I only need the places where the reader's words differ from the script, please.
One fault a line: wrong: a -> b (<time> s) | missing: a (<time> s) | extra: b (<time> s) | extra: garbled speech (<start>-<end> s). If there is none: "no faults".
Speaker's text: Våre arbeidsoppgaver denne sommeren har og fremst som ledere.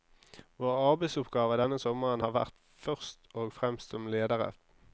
extra: vært først (2.4 s)